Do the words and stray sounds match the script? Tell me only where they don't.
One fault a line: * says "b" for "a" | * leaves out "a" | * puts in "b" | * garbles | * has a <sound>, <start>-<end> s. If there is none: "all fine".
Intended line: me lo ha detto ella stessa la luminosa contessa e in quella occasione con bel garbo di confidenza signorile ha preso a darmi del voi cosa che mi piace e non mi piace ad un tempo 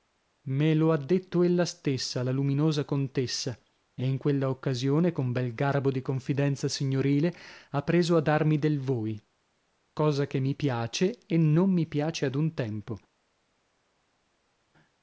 all fine